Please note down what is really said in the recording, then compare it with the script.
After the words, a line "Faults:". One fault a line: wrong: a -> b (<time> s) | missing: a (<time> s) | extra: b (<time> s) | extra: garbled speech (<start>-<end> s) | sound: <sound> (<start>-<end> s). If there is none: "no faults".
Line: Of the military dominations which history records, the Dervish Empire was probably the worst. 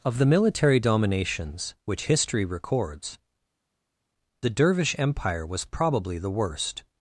Of the military dominations which history records, the Dervish Empire was probably the worst.
Faults:
no faults